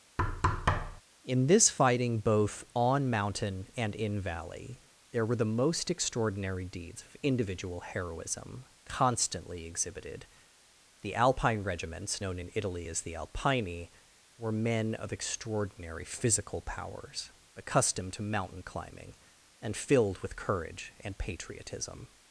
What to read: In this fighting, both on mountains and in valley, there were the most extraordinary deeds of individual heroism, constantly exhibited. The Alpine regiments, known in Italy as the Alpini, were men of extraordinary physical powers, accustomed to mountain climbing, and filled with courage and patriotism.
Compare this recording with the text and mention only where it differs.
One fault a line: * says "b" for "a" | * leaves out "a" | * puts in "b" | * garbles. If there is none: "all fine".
* says "mountain" for "mountains"